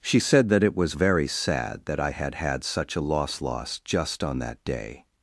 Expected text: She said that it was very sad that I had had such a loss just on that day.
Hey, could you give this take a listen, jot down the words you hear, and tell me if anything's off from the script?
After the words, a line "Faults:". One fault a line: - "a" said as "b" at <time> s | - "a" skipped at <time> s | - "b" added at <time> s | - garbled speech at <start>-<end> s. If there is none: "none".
She said that it was very sad that I had had such a loss loss just on that day.
Faults:
- "loss" added at 3.4 s